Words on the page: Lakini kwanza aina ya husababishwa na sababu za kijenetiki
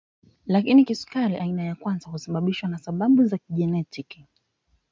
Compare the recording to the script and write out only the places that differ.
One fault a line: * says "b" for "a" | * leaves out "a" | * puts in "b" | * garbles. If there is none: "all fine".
* says "kisukari" for "kwanza"
* puts in "kwanza"